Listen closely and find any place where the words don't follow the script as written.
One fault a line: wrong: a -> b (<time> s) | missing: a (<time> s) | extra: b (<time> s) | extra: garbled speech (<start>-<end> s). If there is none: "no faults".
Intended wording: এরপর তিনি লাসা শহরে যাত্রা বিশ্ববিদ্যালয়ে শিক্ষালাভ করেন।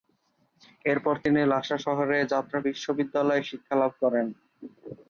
no faults